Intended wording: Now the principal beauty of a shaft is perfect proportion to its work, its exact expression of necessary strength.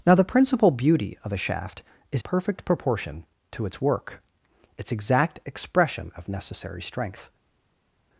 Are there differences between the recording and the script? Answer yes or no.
no